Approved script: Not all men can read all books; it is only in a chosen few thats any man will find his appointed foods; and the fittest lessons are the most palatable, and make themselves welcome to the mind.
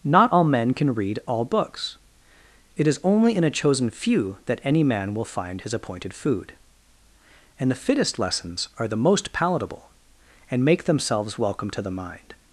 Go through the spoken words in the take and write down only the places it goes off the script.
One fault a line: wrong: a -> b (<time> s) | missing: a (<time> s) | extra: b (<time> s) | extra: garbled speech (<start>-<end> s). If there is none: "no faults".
wrong: thats -> that (4.4 s)
wrong: foods -> food (6.1 s)